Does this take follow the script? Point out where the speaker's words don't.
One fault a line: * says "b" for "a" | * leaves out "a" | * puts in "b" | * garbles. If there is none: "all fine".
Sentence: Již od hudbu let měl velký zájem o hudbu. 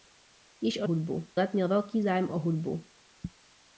all fine